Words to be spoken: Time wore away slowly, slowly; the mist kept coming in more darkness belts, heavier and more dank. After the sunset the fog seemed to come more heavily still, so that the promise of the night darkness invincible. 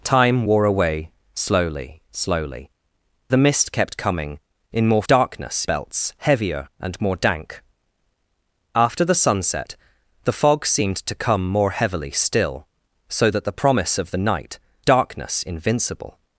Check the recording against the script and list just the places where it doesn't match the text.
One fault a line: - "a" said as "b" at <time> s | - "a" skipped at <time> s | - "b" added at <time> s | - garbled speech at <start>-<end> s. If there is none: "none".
none